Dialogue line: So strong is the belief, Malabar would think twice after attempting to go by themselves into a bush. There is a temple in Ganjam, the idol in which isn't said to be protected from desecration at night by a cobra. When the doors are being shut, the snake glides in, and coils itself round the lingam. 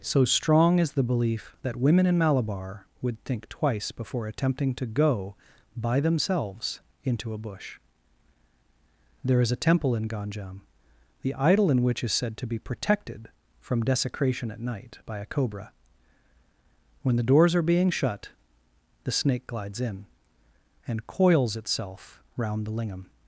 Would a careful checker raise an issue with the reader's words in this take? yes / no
yes